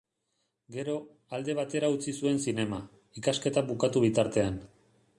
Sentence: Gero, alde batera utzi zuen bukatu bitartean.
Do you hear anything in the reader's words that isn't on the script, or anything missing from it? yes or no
yes